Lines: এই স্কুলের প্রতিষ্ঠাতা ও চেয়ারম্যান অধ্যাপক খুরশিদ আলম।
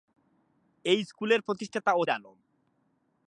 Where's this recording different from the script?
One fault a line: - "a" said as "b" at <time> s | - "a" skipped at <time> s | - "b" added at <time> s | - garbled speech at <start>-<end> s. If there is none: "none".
- "চেয়ারম্যান অধ্যাপক খুরশিদ" skipped at 2.0 s